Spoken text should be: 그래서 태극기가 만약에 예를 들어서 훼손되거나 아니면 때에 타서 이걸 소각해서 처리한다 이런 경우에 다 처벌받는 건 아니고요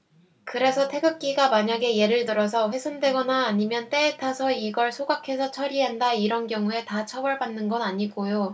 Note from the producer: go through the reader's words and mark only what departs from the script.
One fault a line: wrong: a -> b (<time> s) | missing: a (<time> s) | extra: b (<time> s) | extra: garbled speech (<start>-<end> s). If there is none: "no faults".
no faults